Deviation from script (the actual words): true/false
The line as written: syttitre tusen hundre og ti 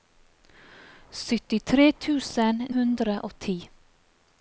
false